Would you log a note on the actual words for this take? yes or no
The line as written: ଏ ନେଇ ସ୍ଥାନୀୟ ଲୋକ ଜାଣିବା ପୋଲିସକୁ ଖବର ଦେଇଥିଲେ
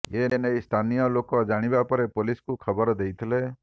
yes